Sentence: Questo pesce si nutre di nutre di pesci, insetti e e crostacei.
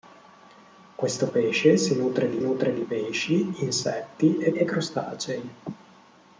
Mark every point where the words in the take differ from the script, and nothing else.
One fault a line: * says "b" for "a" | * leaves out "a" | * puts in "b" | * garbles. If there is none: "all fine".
all fine